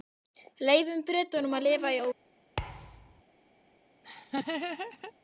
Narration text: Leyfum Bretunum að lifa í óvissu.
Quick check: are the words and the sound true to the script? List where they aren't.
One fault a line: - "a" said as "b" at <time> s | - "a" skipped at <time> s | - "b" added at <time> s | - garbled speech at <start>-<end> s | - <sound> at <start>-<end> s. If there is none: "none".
- thud at 2.6-3.2 s
- laugh at 4.0-5.1 s